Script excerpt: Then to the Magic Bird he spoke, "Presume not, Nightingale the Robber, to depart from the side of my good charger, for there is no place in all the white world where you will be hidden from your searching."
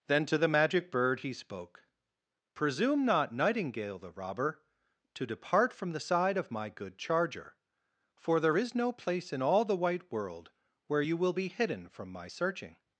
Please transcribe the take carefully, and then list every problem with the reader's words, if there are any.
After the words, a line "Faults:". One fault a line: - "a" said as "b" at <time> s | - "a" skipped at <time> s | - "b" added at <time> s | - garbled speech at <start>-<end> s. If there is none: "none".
Then to the Magic Bird he spoke, "Presume not, Nightingale the Robber, to depart from the side of my good charger, for there is no place in all the white world where you will be hidden from my searching."
Faults:
- "your" said as "my" at 12.1 s